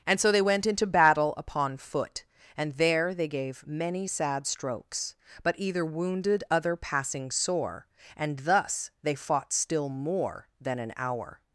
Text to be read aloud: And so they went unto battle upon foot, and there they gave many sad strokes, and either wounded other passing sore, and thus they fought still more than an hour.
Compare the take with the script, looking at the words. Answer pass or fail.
fail